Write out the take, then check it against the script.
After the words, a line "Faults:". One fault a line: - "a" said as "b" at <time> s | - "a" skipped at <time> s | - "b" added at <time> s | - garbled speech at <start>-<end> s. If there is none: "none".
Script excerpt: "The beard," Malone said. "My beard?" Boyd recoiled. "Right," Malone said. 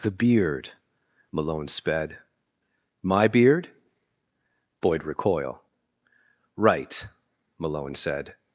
"The beard," Malone sped. "My beard?" Boyd recoil. "Right," Malone said.
Faults:
- "said" said as "sped" at 1.7 s
- "recoiled" said as "recoil" at 5.0 s